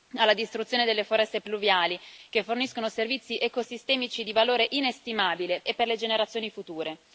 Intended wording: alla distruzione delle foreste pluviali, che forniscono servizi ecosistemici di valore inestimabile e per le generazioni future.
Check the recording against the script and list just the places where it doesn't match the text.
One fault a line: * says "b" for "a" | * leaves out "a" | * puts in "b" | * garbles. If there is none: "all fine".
all fine